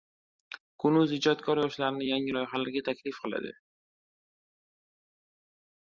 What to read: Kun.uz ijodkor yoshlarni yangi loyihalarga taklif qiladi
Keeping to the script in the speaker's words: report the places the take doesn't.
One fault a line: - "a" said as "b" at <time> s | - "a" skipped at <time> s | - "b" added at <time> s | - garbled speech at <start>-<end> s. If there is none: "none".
none